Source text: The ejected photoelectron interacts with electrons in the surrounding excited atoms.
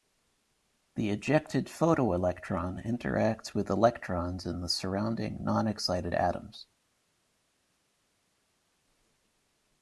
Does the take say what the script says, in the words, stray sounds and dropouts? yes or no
no